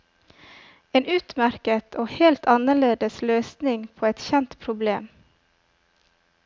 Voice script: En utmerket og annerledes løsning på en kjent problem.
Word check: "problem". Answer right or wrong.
right